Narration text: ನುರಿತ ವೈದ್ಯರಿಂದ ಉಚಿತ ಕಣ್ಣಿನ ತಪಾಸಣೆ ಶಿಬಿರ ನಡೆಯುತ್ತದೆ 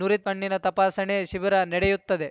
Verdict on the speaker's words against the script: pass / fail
fail